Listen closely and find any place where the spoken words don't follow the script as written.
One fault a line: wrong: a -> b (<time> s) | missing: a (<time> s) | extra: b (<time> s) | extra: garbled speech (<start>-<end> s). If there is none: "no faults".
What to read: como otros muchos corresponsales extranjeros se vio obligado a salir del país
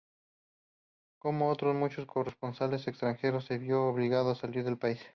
no faults